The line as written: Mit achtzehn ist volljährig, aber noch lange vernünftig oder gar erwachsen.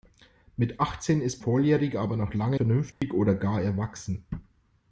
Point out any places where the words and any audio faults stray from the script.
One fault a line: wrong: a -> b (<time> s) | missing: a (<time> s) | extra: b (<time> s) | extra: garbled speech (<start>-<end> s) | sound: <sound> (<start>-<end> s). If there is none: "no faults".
sound: dropout (2.9-3.0 s)